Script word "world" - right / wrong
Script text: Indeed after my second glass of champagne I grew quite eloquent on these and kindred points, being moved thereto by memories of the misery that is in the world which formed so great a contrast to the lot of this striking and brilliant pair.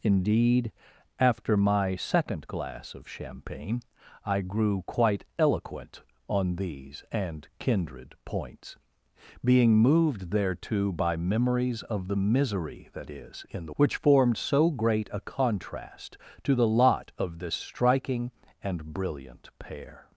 wrong